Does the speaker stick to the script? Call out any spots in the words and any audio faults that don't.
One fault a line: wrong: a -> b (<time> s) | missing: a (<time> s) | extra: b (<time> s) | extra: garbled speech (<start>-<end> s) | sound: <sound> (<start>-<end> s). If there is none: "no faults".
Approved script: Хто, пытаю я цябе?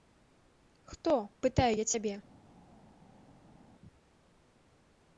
no faults